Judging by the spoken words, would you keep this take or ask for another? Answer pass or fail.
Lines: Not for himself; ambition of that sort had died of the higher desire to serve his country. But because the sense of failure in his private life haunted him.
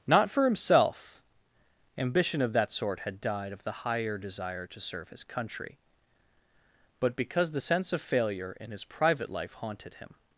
pass